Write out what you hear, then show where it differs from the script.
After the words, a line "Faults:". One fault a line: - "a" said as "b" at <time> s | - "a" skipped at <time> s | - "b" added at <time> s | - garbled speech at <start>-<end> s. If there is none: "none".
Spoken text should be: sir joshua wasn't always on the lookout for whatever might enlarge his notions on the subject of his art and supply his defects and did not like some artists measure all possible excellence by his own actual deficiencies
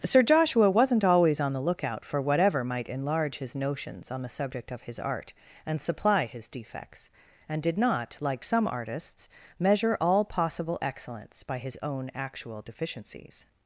sir joshua wasn't always on the lookout for whatever might enlarge his notions on the subject of his art and supply his defects and did not like some artists measure all possible excellence by his own actual deficiencies
Faults:
none